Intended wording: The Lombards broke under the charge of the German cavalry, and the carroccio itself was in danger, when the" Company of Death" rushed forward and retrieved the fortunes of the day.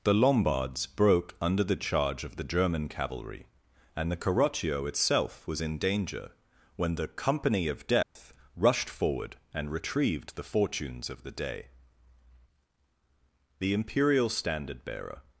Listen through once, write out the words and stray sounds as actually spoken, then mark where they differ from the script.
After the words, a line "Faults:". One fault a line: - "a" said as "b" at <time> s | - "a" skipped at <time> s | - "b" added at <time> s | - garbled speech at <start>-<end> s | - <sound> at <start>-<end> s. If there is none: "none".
The Lombards broke under the charge of the German cavalry, and the carroccio itself was in danger, when the" Company of Death" rushed forward and retrieved the fortunes of the day. The imperial standard bearer
Faults:
- dropout at 8.0-8.2 s
- "The imperial standard bearer" added at 13.6 s